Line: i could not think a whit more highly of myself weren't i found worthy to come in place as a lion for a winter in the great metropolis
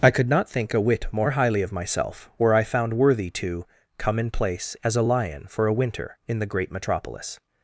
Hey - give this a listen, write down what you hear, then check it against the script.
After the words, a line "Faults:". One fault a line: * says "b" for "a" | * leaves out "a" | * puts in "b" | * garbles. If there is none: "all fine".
i could not think a whit more highly of myself were i found worthy to come in place as a lion for a winter in the great metropolis
Faults:
* says "were" for "weren't"